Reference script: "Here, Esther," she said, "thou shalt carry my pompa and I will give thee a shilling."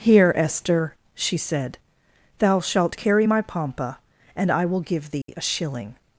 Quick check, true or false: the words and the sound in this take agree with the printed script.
false